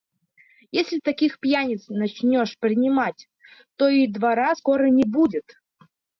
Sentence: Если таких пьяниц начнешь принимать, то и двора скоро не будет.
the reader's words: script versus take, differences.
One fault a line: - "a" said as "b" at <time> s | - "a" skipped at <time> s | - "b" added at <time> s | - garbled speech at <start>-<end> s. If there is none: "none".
none